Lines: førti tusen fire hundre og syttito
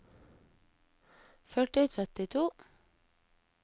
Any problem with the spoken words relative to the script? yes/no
yes